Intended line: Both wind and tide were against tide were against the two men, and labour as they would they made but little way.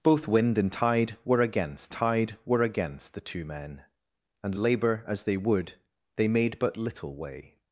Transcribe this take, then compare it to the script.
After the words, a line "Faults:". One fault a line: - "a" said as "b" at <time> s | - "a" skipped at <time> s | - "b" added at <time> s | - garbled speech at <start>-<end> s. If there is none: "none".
Both wind and tide were against tide were against the two men, and labour as they would they made but little way.
Faults:
none